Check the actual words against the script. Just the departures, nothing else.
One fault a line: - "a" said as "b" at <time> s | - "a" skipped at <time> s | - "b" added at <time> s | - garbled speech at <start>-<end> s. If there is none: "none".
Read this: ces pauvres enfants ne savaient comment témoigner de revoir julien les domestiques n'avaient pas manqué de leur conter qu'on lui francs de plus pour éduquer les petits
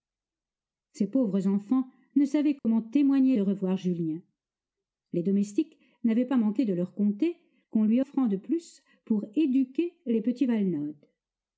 none